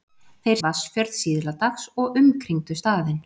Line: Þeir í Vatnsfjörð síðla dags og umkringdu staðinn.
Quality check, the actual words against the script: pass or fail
pass